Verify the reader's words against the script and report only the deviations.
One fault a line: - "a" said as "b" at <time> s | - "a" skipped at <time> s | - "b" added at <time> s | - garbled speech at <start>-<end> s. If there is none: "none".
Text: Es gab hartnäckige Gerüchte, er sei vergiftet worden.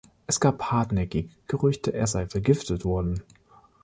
none